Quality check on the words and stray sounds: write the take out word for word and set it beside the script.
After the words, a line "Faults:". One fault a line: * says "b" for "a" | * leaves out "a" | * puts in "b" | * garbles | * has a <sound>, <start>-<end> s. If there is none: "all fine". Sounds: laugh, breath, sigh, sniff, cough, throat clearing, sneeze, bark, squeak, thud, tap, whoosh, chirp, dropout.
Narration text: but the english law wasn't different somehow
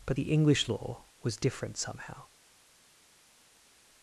but the english law was different somehow
Faults:
* says "was" for "wasn't"